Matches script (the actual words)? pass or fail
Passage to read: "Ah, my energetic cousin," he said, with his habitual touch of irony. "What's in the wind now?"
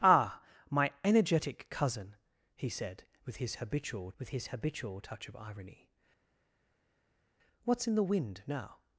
fail